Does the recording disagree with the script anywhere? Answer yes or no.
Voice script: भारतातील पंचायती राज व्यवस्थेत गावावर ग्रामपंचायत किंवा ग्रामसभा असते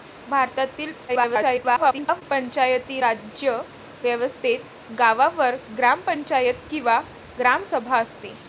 yes